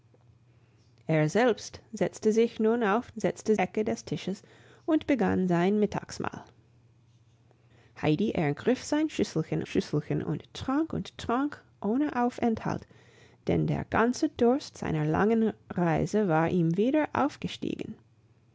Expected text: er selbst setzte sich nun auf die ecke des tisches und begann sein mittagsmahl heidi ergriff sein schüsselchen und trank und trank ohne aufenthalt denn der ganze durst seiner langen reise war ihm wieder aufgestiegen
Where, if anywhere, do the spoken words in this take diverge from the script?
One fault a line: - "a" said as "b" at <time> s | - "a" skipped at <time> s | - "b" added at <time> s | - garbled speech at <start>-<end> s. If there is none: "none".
- "die" said as "setzte" at 3.2 s
- "schüsselchen" added at 9.7 s